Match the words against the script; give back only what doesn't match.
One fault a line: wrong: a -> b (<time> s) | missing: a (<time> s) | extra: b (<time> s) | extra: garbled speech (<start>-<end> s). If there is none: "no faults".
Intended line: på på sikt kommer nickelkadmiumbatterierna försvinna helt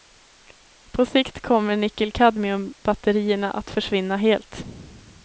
missing: på (1.1 s)
extra: att (3.5 s)